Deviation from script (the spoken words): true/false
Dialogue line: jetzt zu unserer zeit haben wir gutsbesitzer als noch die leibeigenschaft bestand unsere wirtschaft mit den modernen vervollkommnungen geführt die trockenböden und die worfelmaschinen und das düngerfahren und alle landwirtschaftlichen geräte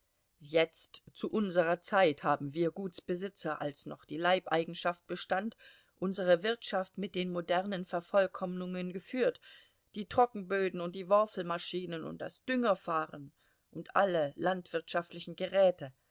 false